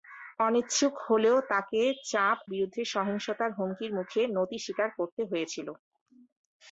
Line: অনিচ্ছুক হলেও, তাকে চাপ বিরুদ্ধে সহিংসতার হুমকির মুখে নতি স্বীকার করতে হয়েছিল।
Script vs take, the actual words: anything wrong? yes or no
no